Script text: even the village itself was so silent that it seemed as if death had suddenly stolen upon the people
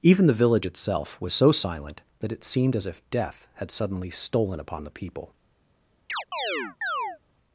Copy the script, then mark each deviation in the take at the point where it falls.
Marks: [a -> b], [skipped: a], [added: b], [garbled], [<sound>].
even the village itself was so silent that it seemed as if death had suddenly stolen upon the people [chirp]